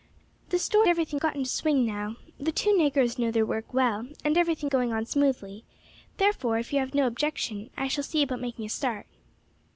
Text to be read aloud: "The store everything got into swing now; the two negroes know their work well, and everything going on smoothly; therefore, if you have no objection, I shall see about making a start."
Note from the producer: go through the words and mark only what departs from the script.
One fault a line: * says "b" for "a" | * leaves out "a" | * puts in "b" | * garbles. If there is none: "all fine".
all fine